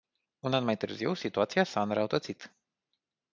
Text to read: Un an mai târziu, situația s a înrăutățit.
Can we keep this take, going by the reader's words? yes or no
yes